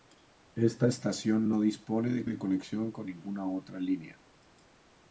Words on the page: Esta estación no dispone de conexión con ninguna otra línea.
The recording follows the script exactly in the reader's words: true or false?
false